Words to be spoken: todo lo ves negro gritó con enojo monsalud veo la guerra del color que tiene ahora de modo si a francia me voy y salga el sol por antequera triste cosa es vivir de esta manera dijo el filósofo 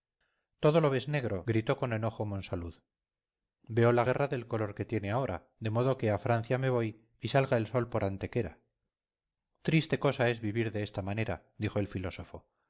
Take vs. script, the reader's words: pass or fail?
fail